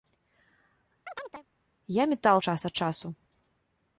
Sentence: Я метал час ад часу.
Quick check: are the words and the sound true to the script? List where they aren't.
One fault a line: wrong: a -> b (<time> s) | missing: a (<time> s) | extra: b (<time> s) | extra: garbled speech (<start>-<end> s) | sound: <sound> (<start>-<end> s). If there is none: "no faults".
sound: chirp (1.1-1.5 s)